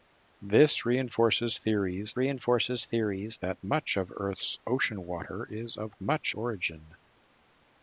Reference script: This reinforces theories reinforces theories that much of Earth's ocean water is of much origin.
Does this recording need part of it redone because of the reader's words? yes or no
no